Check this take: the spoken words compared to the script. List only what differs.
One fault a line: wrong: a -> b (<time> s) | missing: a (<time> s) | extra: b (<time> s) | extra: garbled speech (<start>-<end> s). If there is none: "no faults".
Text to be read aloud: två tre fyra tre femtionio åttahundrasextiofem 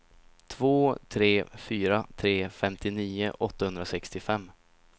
no faults